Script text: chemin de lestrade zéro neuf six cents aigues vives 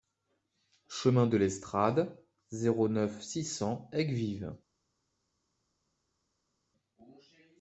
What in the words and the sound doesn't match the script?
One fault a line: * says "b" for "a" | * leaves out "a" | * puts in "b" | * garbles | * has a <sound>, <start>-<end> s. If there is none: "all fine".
all fine